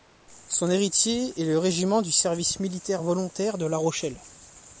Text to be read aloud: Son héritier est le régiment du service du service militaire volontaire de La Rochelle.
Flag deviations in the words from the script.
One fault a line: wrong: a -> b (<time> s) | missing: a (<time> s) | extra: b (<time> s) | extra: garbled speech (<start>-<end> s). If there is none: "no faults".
missing: du service (2.6 s)